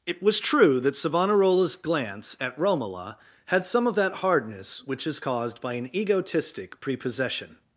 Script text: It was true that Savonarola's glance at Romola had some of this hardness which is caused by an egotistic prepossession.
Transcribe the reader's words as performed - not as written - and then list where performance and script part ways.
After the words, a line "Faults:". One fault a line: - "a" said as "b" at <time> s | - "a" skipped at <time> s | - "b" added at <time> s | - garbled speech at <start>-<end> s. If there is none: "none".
It was true that Savonarola's glance at Romola had some of that hardness which is caused by an egotistic prepossession.
Faults:
- "this" said as "that" at 4.0 s